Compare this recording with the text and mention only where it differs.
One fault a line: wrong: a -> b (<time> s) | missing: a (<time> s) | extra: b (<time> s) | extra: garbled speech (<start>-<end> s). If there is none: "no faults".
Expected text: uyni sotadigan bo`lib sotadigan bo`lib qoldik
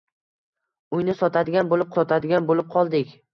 no faults